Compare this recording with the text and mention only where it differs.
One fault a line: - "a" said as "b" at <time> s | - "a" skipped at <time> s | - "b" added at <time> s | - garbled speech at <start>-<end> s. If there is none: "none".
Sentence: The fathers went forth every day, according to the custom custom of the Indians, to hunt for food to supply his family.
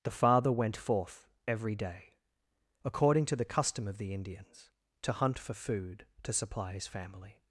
- "fathers" said as "father" at 0.1 s
- "custom" skipped at 3.9 s